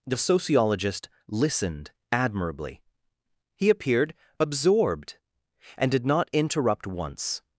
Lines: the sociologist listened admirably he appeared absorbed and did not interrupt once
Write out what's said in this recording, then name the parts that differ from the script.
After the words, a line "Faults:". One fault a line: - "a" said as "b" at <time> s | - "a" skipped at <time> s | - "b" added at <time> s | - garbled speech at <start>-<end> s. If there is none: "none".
the sociologist listened admirably he appeared absorbed and did not interrupt once
Faults:
none